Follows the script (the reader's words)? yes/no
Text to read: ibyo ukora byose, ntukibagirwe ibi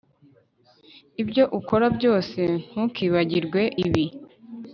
yes